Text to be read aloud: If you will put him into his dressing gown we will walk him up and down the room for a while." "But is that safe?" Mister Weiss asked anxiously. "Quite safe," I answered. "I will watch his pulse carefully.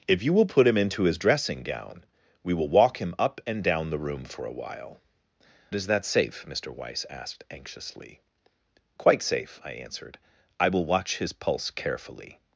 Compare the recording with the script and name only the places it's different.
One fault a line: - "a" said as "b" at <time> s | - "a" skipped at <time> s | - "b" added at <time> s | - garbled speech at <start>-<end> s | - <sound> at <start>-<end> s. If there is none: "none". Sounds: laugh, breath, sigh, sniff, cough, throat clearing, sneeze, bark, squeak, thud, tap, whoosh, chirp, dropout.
- "But" skipped at 5.0 s